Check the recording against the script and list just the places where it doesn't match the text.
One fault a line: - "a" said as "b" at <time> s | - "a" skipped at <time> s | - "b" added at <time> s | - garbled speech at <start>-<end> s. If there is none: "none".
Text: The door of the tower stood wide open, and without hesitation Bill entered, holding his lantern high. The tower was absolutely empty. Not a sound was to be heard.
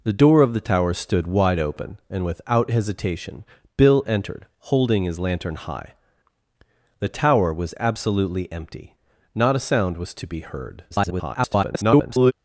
- garbled speech at 10.9-12.3 s